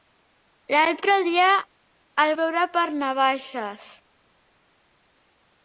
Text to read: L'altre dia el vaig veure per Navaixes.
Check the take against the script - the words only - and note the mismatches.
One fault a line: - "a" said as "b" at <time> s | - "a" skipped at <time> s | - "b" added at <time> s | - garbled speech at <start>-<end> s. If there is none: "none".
- "vaig" skipped at 2.3 s